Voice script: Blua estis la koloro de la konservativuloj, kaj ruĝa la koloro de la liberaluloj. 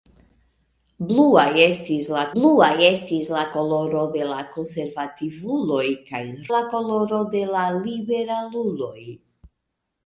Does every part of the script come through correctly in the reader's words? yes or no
no